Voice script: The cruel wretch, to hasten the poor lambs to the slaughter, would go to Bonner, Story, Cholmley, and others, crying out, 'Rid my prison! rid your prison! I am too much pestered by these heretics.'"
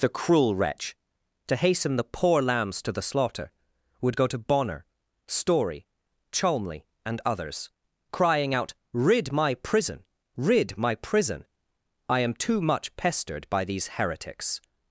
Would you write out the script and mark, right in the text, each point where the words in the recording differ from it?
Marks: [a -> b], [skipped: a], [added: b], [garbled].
The cruel wretch, to hasten the poor lambs to the slaughter, would go to Bonner, Story, Cholmley, and others, crying out, 'Rid my prison! rid [your -> my] prison! I am too much pestered by these heretics.'"